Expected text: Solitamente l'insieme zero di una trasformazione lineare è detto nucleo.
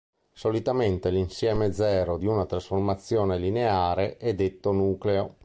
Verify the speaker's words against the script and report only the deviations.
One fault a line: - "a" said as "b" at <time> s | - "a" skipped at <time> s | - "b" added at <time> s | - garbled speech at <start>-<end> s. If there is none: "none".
none